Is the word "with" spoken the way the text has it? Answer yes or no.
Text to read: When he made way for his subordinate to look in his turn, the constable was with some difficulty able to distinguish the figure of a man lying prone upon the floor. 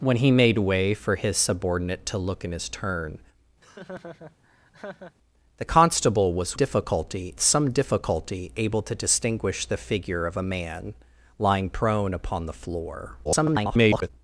no